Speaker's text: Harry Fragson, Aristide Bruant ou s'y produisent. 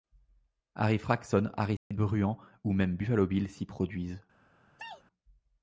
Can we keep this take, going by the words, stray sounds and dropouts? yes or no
no